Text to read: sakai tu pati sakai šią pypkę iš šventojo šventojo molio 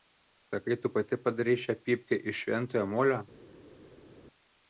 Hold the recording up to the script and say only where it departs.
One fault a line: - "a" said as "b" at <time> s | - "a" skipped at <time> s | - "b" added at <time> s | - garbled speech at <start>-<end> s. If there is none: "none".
- "sakai" said as "padarei" at 1.2 s
- "šventojo" skipped at 2.8 s